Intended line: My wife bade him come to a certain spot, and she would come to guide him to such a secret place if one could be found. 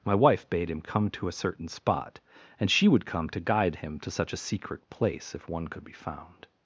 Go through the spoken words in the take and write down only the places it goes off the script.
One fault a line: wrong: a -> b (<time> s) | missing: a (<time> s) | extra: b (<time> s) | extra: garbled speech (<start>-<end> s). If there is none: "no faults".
no faults